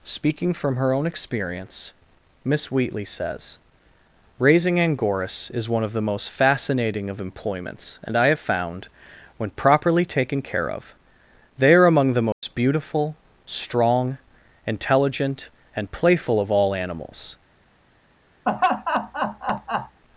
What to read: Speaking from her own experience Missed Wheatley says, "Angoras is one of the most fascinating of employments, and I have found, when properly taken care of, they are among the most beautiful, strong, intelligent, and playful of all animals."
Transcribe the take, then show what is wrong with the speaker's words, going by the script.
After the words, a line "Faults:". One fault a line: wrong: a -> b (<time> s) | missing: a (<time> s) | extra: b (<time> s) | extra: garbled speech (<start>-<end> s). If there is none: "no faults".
Speaking from her own experience Miss Wheatley says, "Raising Angoras is one of the most fascinating of employments, and I have found, when properly taken care of, they are among the most beautiful, strong, intelligent, and playful of all animals."
Faults:
wrong: Missed -> Miss (2.4 s)
extra: Raising (4.4 s)